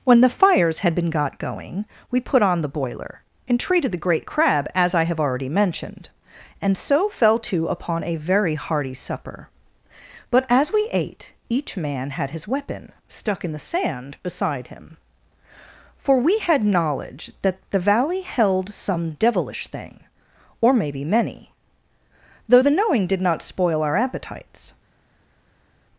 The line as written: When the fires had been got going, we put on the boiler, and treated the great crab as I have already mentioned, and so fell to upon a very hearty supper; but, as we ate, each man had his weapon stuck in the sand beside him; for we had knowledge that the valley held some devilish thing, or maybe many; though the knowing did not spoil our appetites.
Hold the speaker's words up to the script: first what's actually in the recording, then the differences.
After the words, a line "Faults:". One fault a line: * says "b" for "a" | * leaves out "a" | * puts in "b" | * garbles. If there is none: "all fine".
When the fires had been got going, we put on the boiler, and treated the great crab as I have already mentioned, and so fell to upon a very hearty supper; but, as we ate, each man had his weapon stuck in the sand beside him; for we had knowledge that the valley held some devilish thing, or maybe many; though the knowing did not spoil our appetites.
Faults:
all fine